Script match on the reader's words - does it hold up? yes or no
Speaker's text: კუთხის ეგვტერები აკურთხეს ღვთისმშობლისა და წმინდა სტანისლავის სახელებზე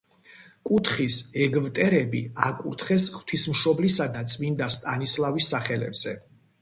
yes